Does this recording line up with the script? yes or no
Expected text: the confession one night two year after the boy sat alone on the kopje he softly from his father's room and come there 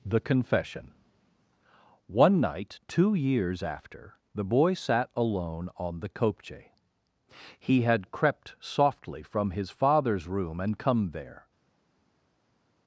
no